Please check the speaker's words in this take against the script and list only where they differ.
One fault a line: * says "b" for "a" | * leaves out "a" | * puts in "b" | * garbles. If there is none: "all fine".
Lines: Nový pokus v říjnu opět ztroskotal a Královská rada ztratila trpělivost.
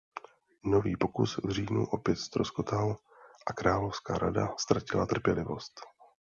all fine